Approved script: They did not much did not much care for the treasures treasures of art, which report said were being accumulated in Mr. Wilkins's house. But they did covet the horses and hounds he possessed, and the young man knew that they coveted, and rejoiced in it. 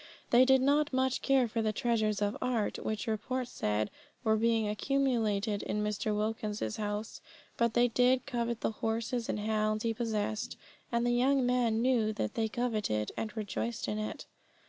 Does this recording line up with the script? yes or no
no